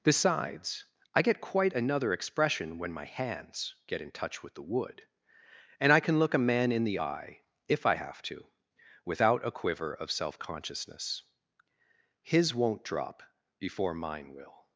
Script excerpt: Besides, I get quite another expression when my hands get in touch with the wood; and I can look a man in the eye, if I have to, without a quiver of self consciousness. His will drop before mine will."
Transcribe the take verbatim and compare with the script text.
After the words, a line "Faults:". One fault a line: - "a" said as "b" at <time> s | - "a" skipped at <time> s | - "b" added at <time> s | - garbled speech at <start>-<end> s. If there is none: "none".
Besides, I get quite another expression when my hands get in touch with the wood; and I can look a man in the eye, if I have to, without a quiver of self consciousness. His won't drop before mine will."
Faults:
- "will" said as "won't" at 12.5 s